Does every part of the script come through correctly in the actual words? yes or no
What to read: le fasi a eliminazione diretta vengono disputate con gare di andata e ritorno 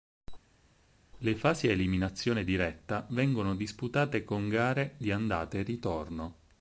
yes